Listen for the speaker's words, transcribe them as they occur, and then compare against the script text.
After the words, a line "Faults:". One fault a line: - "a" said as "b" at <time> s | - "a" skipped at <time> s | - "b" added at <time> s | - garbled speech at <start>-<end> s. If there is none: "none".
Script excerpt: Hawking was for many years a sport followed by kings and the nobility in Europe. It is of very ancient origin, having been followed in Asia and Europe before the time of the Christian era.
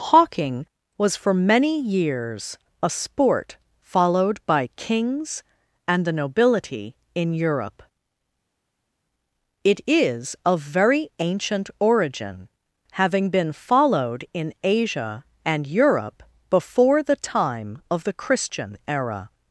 Hawking was for many years a sport followed by kings and the nobility in Europe. It is of very ancient origin, having been followed in Asia and Europe before the time of the Christian era.
Faults:
none